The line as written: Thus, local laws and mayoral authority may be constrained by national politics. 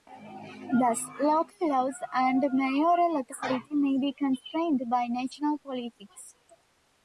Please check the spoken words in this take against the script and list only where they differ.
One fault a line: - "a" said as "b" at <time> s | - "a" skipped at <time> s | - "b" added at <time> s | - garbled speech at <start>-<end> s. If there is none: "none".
none